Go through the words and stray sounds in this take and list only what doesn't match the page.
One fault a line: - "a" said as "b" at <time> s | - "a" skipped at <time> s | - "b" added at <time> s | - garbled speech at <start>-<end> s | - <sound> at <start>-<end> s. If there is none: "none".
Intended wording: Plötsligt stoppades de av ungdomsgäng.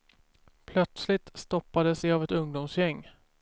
- "ett" added at 2.2 s